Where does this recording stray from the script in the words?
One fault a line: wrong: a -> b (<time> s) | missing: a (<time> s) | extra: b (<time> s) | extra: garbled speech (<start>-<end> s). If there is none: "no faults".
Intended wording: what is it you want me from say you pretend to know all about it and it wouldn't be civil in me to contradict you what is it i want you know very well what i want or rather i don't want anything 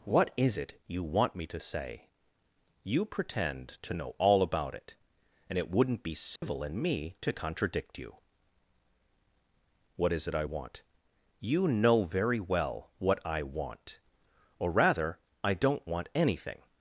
wrong: from -> to (1.5 s)